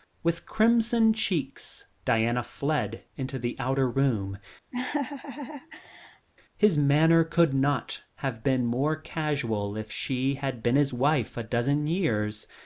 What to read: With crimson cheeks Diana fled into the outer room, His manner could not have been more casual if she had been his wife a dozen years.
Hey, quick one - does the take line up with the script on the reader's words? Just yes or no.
yes